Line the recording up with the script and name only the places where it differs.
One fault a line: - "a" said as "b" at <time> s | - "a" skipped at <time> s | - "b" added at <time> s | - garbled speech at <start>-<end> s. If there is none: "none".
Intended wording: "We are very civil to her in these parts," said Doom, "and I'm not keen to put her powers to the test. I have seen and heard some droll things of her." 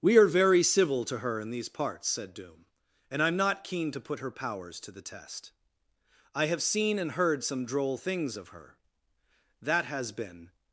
- "That has been" added at 9.6 s